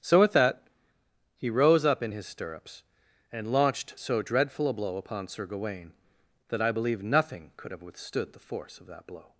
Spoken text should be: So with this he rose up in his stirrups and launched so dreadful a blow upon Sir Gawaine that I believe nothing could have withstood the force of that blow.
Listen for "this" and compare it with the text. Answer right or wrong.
wrong